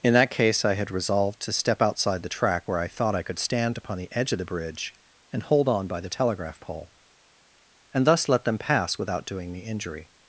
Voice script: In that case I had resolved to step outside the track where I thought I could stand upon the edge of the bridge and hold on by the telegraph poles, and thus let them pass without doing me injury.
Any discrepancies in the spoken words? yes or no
yes